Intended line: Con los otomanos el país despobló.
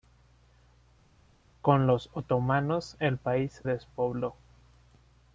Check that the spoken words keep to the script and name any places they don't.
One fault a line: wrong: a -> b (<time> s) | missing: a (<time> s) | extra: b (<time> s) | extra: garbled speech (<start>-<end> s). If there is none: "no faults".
no faults